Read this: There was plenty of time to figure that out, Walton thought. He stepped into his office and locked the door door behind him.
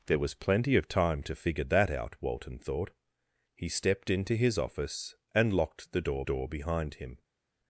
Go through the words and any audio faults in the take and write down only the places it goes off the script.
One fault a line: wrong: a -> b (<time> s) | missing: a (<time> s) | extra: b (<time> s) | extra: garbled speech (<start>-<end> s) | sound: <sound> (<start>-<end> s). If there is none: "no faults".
no faults